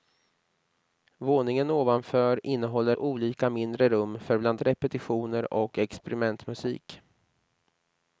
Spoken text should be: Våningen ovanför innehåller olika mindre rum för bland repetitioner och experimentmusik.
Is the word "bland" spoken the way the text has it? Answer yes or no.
yes